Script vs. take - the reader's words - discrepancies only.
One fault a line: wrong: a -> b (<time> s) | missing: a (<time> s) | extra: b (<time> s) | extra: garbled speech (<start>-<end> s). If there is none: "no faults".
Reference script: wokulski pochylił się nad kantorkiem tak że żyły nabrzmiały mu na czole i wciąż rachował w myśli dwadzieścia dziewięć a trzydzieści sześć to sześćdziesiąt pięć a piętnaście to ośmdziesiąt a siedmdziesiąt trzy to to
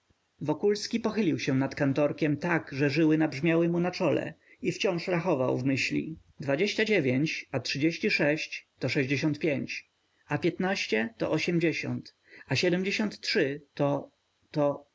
no faults